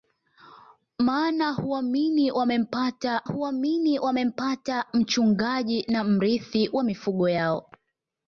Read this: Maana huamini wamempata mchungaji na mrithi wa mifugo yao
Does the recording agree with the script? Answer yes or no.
no